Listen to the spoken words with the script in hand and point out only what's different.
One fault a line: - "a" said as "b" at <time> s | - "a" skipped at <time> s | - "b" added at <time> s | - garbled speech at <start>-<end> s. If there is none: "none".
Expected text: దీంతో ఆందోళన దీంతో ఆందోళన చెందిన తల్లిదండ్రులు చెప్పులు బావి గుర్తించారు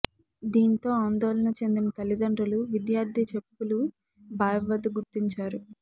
- "దీంతో ఆందోళన" skipped at 1.5 s
- "విద్యార్థి" added at 2.7 s
- "వద్ద" added at 4.7 s